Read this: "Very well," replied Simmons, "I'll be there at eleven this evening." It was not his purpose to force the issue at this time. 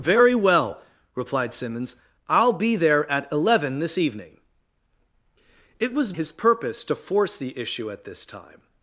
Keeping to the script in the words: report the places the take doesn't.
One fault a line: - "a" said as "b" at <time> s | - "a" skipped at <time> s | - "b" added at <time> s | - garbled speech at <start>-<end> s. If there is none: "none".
- "not" skipped at 6.1 s